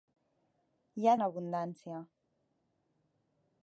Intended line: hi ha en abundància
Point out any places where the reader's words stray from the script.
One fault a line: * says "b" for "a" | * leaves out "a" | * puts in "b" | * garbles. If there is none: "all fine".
all fine